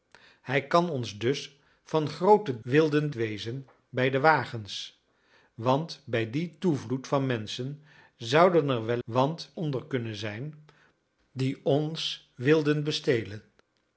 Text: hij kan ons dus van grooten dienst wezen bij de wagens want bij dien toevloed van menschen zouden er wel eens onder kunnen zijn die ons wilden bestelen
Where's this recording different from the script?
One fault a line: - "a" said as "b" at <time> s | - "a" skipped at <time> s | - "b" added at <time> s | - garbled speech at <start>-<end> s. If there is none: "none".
- "dienst" said as "wilden" at 2.6 s
- "eens" said as "want" at 9.0 s